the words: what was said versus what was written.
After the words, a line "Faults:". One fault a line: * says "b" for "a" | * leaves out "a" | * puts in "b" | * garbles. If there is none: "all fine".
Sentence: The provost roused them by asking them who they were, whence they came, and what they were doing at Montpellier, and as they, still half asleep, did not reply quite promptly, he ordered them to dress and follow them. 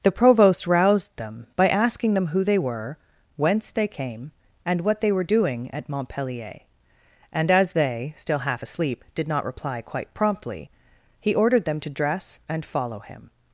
The provost roused them by asking them who they were, whence they came, and what they were doing at Montpellier, and as they, still half asleep, did not reply quite promptly, he ordered them to dress and follow him.
Faults:
* says "him" for "them"